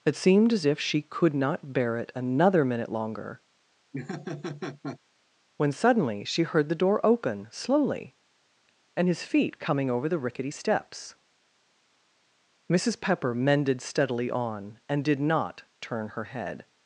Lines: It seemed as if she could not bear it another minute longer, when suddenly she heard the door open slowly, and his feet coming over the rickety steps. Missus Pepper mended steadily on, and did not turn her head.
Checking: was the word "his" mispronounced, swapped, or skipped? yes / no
no